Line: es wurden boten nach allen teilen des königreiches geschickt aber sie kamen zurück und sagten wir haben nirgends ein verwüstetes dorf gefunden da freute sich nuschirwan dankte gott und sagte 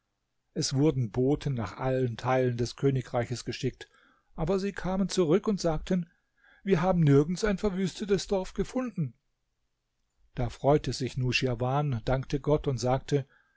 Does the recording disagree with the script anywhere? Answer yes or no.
no